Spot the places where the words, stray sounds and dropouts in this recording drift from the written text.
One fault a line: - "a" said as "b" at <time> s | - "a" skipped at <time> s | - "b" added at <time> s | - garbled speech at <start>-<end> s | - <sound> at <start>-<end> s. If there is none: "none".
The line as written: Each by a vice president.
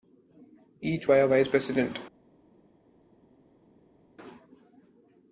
none